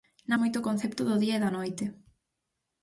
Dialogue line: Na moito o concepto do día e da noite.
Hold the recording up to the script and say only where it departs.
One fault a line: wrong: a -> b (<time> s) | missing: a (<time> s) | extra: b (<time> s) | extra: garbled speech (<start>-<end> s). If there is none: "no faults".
no faults